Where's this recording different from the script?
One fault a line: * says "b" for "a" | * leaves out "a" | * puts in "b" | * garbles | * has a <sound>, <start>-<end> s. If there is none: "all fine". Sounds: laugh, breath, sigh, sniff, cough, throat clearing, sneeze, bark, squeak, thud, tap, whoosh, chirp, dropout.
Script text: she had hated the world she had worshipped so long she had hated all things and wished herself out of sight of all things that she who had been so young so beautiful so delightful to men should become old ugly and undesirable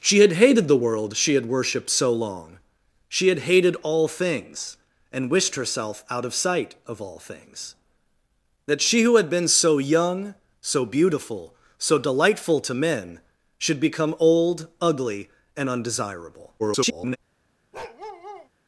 * garbles
* has a bark, 17.7-18.5 s